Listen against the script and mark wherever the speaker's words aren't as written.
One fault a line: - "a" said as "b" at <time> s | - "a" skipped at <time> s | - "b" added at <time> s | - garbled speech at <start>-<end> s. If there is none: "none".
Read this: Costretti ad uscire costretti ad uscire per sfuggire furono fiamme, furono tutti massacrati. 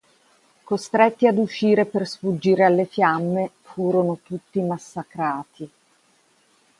- "costretti ad uscire" skipped at 1.9 s
- "furono" said as "alle" at 2.6 s